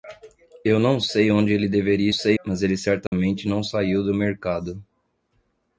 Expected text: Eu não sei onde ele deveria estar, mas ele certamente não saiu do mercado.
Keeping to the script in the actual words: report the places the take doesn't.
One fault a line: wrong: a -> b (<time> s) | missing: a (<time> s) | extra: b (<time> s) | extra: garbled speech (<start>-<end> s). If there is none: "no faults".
wrong: estar -> sei (2.1 s)